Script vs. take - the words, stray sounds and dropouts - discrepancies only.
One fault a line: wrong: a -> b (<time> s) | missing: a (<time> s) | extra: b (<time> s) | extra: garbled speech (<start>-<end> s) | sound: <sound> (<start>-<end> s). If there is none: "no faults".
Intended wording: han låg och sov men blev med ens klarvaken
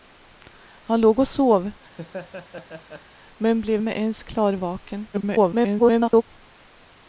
sound: laugh (1.9-3.0 s)
extra: garbled speech (5.1-6.2 s)